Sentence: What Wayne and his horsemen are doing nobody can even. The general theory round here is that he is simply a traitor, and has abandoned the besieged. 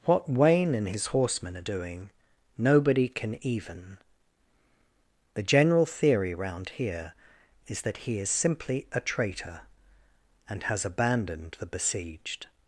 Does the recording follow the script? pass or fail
pass